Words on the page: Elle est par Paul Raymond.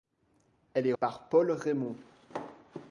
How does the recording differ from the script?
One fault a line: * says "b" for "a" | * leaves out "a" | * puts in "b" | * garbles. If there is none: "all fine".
all fine